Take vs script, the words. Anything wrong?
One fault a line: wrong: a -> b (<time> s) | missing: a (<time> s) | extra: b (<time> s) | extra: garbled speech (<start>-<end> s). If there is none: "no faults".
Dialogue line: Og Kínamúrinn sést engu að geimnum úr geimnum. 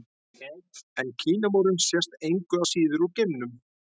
wrong: Og -> En (1.0 s)
wrong: geimnum -> síður (2.7 s)